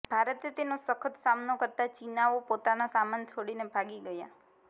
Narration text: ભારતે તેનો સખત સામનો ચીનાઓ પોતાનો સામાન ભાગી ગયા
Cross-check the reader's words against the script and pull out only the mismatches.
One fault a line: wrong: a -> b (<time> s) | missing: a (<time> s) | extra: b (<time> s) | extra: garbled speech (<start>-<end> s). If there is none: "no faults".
extra: કરતા (1.6 s)
extra: છોડીને (3.3 s)